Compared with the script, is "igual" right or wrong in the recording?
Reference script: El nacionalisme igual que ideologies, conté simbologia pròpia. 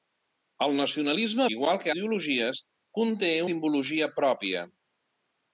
right